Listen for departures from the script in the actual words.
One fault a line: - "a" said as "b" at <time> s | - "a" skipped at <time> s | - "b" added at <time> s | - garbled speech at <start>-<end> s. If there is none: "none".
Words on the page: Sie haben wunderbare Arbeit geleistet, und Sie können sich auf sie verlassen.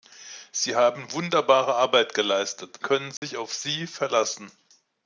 - "und Sie" skipped at 2.8 s